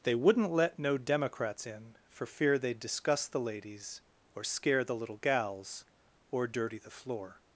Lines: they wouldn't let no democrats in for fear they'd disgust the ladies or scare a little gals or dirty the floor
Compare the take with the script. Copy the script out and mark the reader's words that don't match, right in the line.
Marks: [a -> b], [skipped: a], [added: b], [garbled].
they wouldn't let no democrats in for fear they'd disgust the ladies or scare [a -> the] little gals or dirty the floor